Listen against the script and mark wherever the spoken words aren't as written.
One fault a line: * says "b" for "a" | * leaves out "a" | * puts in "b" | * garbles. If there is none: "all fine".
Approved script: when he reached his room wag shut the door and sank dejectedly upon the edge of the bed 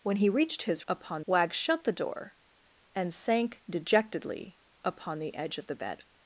* says "upon" for "room"